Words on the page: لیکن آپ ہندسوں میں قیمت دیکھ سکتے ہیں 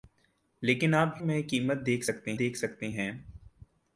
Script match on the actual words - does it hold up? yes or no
no